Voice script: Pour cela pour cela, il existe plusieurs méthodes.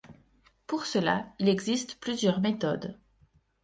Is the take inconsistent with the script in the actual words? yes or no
yes